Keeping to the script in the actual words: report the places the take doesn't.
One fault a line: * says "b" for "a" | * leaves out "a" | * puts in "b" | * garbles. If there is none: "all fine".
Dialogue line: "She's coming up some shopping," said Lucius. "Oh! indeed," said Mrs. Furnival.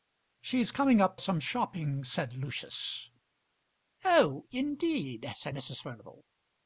all fine